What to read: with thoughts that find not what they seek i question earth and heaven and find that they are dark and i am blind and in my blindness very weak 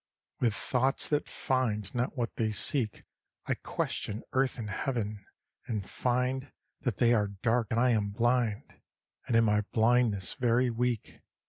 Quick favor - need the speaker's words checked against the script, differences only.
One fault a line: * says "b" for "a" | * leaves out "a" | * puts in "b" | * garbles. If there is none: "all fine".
all fine